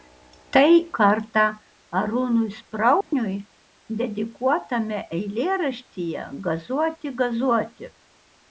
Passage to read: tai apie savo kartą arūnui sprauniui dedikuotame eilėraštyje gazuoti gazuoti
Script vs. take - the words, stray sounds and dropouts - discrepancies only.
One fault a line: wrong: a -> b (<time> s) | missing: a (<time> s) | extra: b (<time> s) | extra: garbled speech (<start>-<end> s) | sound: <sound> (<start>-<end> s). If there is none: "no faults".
missing: apie savo (0.7 s)
sound: dropout (3.0-3.1 s)